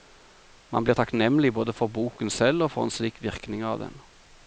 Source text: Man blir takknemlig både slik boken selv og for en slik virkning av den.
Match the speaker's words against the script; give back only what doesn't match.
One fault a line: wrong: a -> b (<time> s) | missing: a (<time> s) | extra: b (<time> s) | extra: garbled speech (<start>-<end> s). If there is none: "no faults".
wrong: slik -> for (1.7 s)